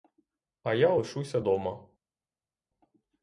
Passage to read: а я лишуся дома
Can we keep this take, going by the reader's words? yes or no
yes